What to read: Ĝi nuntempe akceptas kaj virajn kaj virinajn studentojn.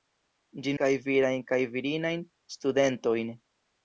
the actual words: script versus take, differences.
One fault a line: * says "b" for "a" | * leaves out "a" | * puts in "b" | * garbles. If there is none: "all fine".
* leaves out "nuntempe akceptas"